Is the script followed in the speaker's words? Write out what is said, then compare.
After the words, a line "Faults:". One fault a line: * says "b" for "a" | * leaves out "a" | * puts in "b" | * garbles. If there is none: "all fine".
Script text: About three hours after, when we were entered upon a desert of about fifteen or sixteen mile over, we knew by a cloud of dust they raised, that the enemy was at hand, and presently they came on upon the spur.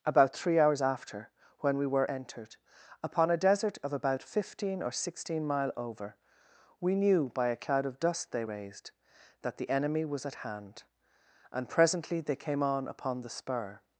About three hours after, when we were entered upon a desert of about fifteen or sixteen mile over, we knew by a cloud of dust they raised, that the enemy was at hand, and presently they came on upon the spur.
Faults:
all fine